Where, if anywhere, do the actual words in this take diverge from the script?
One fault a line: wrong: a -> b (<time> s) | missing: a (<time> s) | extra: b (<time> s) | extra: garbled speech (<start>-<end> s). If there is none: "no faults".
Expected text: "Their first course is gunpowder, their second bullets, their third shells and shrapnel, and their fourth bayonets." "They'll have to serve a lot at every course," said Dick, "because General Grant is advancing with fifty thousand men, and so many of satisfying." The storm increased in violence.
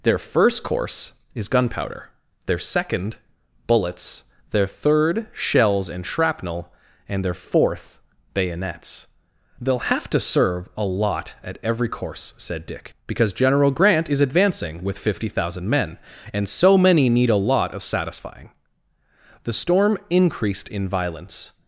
extra: need a lot (17.1 s)